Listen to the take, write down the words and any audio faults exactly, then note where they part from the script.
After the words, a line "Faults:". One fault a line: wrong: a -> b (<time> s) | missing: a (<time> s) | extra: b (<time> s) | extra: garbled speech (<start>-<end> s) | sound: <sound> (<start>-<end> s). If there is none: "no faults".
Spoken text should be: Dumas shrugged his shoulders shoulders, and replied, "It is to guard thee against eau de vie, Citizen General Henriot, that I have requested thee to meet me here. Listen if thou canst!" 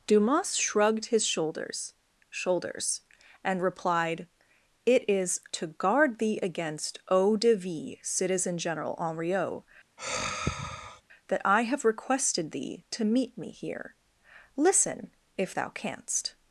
Dumas shrugged his shoulders shoulders, and replied, "It is to guard thee against eau de vie, Citizen General Henriot, that I have requested thee to meet me here. Listen if thou canst!"
Faults:
sound: sigh (10.0-11.0 s)